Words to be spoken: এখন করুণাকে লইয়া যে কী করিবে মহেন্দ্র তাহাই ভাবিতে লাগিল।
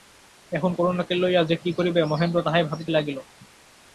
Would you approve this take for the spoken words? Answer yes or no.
yes